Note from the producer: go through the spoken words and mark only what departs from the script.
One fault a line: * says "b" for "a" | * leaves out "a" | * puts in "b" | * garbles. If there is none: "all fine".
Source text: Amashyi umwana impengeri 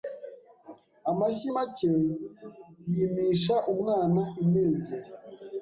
* puts in "make yimisha"